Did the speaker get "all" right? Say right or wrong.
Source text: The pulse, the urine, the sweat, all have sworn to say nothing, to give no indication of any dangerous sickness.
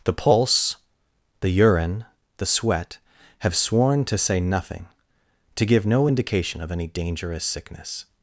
wrong